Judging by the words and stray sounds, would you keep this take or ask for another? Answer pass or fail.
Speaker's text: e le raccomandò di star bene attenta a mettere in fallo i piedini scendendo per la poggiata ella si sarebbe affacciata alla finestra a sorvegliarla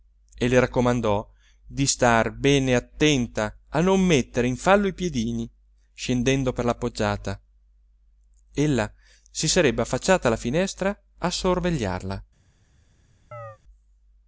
fail